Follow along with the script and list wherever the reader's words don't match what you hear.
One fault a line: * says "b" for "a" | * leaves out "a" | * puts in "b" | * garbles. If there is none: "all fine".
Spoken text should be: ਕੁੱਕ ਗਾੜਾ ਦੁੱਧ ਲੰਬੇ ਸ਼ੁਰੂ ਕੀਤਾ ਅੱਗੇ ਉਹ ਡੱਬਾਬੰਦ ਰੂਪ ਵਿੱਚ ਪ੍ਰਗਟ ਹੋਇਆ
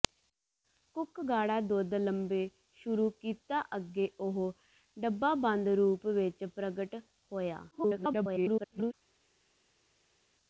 * garbles